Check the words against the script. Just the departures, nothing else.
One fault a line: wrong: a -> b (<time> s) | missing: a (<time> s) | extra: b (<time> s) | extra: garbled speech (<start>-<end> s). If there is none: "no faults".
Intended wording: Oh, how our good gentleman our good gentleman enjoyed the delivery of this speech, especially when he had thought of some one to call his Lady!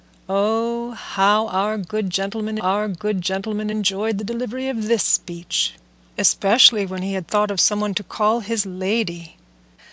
no faults